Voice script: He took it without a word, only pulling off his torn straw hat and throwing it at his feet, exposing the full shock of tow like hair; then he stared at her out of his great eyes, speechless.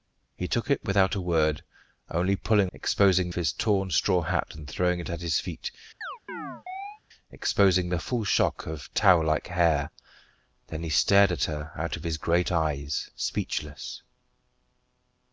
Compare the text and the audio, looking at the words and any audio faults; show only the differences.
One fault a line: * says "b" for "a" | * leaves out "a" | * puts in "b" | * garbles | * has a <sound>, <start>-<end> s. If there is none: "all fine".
* says "exposing" for "off"
* has a chirp, 6.0-7.0 s